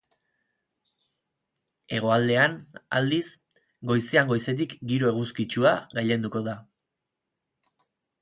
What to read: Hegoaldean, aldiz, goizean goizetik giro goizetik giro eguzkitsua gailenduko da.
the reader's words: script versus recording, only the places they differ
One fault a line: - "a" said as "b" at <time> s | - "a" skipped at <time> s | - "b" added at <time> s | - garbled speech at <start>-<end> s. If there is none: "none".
- "goizetik giro" skipped at 5.1 s